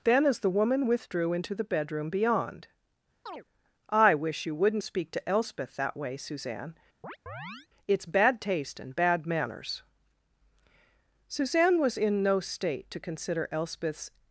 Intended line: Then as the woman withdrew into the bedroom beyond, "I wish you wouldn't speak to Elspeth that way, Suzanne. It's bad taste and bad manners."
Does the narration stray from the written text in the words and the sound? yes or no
yes